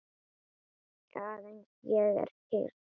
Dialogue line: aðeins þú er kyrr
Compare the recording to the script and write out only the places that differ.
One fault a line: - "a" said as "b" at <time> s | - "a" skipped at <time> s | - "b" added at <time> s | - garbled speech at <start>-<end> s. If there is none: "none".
- "þú" said as "ég" at 1.9 s